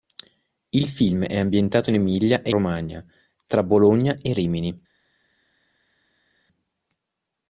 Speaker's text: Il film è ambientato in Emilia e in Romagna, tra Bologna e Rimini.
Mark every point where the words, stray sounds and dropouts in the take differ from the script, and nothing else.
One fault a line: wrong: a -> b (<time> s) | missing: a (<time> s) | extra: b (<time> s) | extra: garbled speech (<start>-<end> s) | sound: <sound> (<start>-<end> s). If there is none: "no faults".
missing: in (2.5 s)